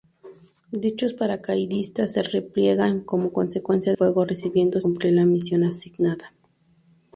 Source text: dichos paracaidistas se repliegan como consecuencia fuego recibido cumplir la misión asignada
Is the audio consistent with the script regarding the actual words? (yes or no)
yes